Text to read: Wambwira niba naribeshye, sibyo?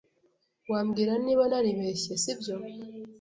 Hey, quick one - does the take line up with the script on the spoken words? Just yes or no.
yes